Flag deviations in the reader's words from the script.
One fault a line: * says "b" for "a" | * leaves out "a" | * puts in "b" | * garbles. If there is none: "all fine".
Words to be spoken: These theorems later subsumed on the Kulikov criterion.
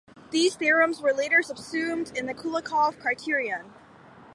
* puts in "were"
* says "in" for "on"